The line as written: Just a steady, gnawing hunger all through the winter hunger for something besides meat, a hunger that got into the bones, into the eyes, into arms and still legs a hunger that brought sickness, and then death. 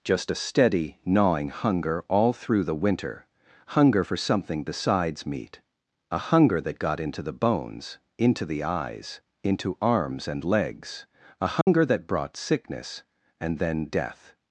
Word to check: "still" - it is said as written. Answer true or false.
false